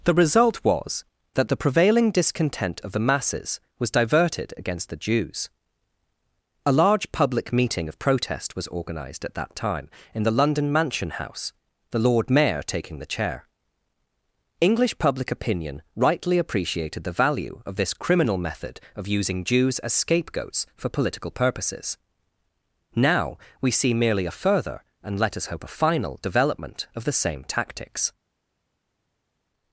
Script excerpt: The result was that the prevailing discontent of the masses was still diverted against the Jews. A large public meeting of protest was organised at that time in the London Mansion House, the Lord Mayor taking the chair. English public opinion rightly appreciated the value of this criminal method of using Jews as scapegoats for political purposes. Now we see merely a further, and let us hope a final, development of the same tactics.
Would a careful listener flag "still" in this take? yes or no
yes